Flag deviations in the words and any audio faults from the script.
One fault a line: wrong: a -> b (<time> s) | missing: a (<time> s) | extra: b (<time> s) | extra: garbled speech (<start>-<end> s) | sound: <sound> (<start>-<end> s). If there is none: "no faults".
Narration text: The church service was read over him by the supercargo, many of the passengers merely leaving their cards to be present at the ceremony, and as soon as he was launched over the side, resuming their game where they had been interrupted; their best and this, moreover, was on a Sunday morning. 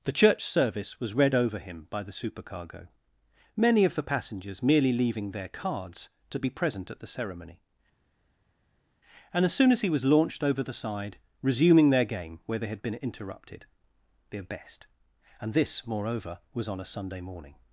no faults